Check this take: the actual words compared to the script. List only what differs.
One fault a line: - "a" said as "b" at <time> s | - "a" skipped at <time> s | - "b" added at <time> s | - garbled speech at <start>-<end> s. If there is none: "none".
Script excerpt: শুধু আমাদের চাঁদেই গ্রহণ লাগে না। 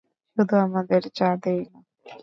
- "গ্রহণ লাগে" skipped at 1.6 s